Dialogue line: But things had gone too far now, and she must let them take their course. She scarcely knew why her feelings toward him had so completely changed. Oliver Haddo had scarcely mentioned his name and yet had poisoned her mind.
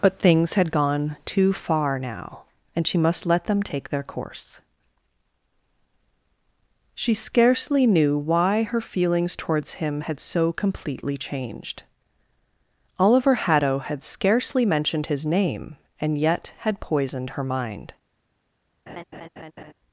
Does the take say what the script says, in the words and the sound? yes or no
no